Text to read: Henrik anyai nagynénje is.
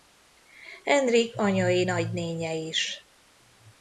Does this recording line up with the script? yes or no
yes